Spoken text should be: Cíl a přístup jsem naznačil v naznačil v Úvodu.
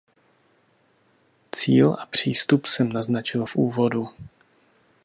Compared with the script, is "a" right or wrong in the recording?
right